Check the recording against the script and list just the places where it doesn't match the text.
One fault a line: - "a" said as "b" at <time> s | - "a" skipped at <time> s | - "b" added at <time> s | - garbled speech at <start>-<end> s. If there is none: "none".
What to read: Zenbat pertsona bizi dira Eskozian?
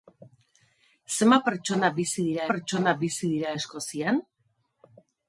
- "pertsona bizi dira" added at 2.5 s